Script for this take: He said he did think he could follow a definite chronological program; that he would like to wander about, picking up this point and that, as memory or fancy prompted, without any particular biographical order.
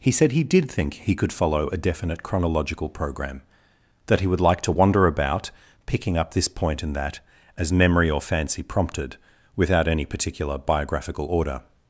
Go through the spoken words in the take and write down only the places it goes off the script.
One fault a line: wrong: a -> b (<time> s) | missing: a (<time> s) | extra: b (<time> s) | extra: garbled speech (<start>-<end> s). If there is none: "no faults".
no faults